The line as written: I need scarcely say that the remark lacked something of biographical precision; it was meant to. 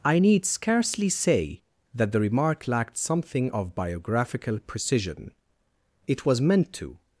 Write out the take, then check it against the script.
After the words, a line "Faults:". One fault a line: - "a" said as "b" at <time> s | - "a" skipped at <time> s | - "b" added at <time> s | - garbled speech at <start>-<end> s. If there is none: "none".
I need scarcely say that the remark lacked something of biographical precision; it was meant to.
Faults:
none